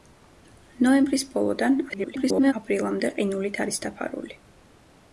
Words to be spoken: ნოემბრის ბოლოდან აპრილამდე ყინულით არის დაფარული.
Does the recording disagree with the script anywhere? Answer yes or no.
yes